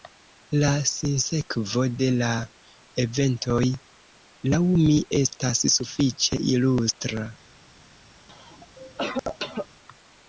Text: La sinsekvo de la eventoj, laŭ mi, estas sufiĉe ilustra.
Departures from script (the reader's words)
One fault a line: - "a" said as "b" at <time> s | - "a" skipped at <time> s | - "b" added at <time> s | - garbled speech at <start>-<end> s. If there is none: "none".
none